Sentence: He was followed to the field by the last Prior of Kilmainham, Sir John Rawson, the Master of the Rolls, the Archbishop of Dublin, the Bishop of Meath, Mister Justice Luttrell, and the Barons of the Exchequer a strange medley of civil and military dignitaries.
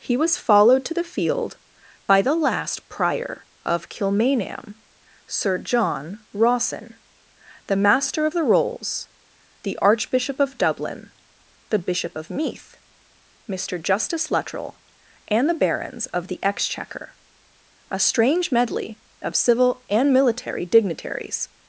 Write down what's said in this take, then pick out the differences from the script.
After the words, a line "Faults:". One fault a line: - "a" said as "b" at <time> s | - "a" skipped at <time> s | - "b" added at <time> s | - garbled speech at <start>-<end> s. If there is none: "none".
He was followed to the field by the last Prior of Kilmainham, Sir John Rawson, the Master of the Rolls, the Archbishop of Dublin, the Bishop of Meath, Mister Justice Luttrell, and the Barons of the Exchequer a strange medley of civil and military dignitaries.
Faults:
none